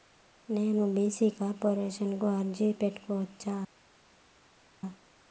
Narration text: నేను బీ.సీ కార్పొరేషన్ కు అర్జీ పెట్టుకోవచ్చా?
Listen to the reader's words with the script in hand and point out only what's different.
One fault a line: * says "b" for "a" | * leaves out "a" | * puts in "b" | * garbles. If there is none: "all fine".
all fine